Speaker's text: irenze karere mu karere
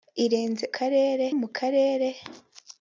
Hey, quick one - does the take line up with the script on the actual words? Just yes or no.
yes